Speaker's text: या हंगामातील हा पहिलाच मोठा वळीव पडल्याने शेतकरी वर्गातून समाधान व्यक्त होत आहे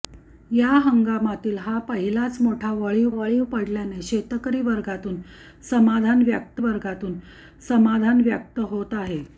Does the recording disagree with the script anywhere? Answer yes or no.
yes